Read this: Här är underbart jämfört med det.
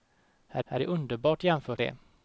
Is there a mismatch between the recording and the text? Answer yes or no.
yes